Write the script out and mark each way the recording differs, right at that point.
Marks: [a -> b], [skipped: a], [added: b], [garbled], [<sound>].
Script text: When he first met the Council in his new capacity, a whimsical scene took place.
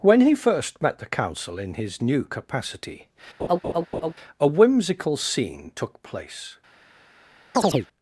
When he first met the Council in his new capacity, [laugh] a whimsical scene took place. [chirp]